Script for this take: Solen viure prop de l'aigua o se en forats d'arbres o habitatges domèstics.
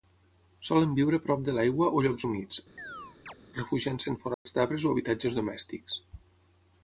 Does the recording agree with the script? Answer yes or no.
no